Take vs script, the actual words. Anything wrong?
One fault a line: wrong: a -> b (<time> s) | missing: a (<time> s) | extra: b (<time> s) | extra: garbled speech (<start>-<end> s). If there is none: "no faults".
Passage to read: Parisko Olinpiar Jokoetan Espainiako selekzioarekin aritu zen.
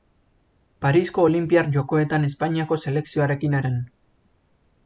missing: aritu (3.6 s)